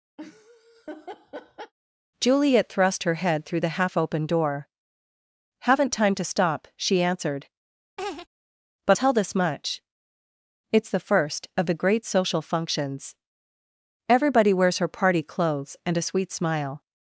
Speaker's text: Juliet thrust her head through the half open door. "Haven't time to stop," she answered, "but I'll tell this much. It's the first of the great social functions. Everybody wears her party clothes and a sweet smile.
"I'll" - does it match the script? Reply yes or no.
no